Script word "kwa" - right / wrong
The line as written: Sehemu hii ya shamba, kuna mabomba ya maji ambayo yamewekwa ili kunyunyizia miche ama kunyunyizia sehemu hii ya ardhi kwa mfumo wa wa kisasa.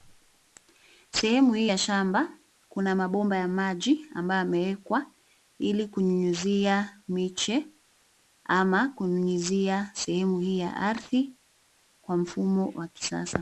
right